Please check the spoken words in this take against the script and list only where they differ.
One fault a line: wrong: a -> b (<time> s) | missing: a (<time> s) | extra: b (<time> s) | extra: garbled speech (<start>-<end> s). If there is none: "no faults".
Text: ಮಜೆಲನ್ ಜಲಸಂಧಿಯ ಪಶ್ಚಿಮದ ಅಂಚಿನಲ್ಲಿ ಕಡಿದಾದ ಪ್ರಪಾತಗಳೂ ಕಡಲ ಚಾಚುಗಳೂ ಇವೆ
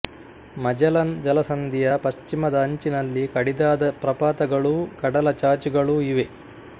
no faults